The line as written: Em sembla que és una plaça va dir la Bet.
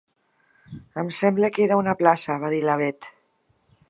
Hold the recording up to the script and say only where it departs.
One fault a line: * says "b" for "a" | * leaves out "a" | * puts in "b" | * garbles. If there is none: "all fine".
* says "era" for "és"